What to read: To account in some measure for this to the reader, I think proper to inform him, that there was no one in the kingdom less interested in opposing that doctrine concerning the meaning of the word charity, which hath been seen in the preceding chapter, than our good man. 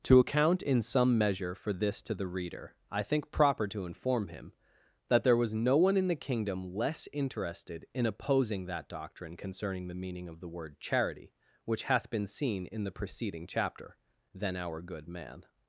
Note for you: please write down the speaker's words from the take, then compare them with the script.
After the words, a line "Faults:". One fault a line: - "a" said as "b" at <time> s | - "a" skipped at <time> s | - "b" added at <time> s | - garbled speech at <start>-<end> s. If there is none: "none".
To account in some measure for this to the reader, I think proper to inform him, that there was no one in the kingdom less interested in opposing that doctrine concerning the meaning of the word charity, which hath been seen in the preceding chapter, than our good man.
Faults:
none